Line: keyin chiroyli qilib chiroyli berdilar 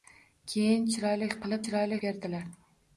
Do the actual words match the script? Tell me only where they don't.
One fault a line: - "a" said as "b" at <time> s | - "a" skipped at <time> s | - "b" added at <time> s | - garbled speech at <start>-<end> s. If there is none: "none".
none